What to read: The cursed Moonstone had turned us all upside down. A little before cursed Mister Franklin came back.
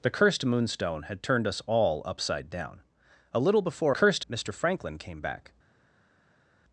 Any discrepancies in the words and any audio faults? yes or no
no